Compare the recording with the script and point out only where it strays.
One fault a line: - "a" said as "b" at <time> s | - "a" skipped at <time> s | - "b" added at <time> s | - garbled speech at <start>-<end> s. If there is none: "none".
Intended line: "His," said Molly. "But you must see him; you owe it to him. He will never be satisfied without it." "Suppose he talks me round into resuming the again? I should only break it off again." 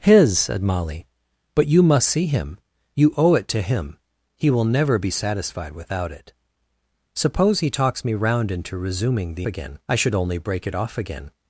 none